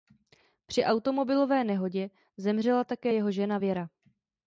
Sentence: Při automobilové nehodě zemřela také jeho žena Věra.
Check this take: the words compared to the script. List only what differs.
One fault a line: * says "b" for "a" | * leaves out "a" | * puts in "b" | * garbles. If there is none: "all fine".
all fine